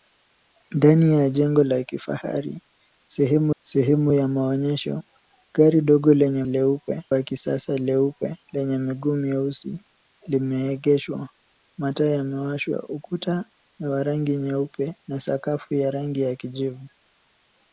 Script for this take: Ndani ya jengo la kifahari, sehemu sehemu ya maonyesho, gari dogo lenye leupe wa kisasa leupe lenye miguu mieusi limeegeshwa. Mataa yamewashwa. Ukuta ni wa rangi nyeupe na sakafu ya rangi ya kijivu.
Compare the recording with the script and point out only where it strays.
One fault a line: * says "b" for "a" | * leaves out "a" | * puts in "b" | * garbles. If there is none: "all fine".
all fine